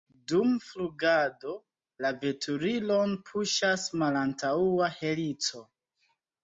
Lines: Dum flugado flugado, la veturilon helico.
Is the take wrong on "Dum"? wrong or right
right